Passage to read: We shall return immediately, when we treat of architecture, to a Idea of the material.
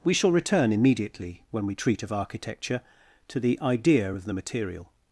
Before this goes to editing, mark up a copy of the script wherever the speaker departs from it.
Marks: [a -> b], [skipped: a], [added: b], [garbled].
We shall return immediately, when we treat of architecture, to [a -> the] Idea of the material.